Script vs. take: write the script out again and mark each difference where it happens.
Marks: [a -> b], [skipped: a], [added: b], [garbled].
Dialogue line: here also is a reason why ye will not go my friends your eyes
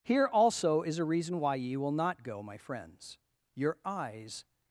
here also is a reason why ye will not go my friends your eyes